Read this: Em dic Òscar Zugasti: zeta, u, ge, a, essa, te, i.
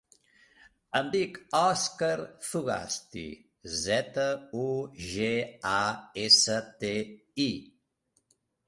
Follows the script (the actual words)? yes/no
yes